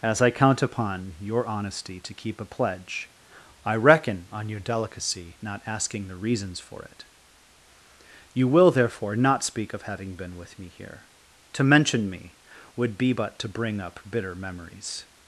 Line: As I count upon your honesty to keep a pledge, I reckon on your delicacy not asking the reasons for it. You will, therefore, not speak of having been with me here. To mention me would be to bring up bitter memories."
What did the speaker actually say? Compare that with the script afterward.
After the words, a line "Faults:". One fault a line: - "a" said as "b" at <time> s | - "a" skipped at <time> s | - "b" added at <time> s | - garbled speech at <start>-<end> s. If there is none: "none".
As I count upon your honesty to keep a pledge, I reckon on your delicacy not asking the reasons for it. You will, therefore, not speak of having been with me here. To mention me would be but to bring up bitter memories."
Faults:
- "but" added at 13.1 s